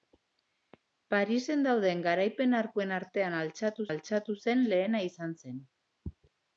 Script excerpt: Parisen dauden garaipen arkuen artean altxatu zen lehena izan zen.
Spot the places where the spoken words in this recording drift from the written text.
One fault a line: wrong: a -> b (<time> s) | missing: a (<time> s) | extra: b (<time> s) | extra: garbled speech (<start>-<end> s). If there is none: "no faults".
extra: altxatu (3.9 s)